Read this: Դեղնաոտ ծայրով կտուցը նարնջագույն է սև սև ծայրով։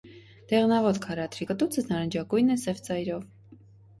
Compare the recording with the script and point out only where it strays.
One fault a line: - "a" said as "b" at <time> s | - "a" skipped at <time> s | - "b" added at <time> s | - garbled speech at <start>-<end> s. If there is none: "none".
- "ծայրով" said as "քարադրի" at 1.0 s
- "սև" skipped at 2.8 s